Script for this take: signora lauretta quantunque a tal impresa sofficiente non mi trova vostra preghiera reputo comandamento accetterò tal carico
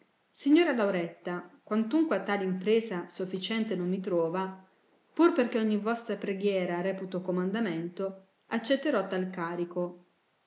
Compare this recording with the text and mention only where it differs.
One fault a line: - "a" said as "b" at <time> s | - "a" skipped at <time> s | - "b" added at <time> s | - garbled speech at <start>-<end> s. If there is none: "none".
- "pur perchè ogni" added at 5.1 s